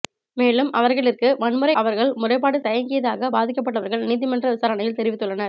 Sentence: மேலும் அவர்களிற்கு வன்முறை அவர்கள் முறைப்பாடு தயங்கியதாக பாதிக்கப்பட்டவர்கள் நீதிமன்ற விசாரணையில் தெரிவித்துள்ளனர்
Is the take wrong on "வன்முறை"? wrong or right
right